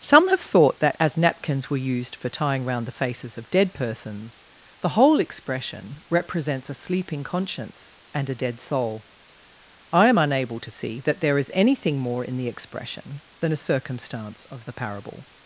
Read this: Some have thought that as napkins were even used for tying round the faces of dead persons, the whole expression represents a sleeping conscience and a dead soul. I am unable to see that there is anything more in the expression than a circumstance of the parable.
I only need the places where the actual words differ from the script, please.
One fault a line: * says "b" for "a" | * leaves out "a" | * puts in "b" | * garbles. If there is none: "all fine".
* leaves out "even"